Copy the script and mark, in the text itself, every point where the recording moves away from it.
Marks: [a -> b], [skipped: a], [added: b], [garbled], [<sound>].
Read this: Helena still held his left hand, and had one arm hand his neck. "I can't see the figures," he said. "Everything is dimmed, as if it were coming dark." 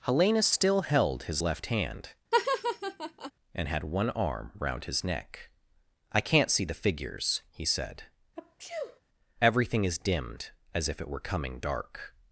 Helena still held his left hand, [laugh] and had one arm [hand -> round] his neck. "I can't see the figures," he said. [sneeze] "Everything is dimmed, as if it were coming dark."